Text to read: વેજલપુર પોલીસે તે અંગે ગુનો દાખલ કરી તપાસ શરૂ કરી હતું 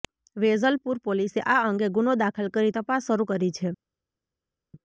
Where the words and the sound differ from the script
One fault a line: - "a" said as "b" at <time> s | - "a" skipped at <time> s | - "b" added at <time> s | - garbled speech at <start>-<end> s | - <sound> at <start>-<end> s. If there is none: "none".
- "તે" said as "આ" at 1.4 s
- "હતું" said as "છે" at 3.5 s